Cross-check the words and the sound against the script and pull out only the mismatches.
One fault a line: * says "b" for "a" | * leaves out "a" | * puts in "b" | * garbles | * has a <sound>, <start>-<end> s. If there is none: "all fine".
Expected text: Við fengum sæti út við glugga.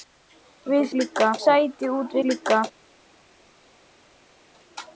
* says "glugga" for "fengum"
* leaves out "við"